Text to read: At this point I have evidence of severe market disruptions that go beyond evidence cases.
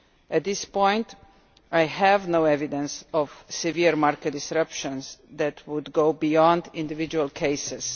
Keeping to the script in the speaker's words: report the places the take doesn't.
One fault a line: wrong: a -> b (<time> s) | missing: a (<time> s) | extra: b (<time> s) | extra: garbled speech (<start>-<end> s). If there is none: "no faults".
extra: no (2.3 s)
extra: would (5.7 s)
wrong: evidence -> individual (6.7 s)